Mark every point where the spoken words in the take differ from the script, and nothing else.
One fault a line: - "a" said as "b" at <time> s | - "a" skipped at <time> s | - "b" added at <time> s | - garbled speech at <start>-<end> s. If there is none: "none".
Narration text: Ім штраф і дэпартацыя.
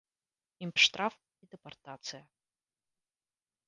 none